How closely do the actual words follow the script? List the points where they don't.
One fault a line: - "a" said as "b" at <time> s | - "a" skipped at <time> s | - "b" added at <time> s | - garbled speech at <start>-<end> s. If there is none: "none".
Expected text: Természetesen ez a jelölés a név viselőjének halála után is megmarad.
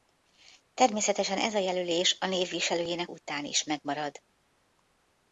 - "halála" skipped at 3.1 s